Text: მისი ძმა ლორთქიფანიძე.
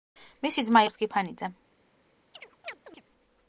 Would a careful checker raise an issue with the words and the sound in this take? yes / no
yes